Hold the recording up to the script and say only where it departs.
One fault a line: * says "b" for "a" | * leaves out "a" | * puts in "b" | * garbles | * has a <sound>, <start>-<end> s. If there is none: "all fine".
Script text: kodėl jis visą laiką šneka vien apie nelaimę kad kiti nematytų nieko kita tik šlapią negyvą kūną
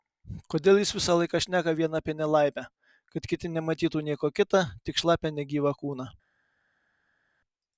all fine